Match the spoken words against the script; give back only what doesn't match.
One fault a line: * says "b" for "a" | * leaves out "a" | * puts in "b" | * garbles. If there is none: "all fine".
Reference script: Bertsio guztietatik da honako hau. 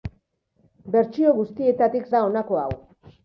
all fine